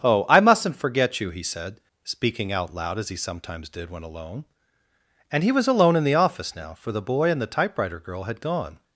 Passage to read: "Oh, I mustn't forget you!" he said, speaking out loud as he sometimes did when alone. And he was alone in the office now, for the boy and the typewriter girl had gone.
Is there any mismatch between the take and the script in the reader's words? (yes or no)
no